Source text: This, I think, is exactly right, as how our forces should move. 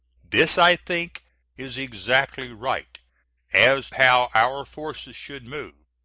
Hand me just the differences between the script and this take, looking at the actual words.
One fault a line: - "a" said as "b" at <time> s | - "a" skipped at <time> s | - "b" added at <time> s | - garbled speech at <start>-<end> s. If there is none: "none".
none